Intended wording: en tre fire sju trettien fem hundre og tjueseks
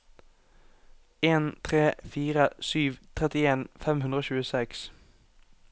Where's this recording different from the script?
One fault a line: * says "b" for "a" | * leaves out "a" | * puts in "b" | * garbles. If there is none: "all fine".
all fine